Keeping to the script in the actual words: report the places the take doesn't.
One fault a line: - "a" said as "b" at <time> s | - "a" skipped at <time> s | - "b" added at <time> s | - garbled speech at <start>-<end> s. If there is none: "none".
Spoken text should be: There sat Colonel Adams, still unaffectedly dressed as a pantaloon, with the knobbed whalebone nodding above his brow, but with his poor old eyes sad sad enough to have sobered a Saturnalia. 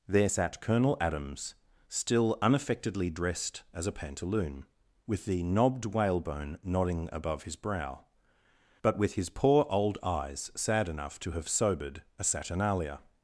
- "sad" skipped at 10.9 s